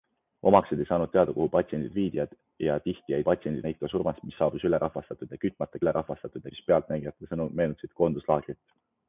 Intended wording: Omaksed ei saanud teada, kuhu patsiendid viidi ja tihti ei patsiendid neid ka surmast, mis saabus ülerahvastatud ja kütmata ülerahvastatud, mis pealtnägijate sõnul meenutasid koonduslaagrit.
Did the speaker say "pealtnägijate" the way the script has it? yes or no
yes